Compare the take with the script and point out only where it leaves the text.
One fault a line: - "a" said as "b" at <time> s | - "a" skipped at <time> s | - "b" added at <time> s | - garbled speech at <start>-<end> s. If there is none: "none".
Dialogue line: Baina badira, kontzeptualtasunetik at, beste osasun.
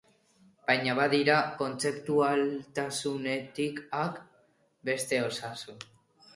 none